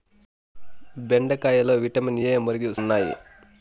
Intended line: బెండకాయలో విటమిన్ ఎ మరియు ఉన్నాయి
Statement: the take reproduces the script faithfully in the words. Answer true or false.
true